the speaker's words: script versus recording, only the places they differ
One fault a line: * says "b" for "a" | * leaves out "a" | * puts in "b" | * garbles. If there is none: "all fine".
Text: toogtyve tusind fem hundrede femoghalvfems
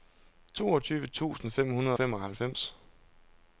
all fine